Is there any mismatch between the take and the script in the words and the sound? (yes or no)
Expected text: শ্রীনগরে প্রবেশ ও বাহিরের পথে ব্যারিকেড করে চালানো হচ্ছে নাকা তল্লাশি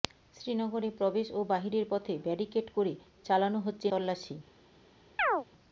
yes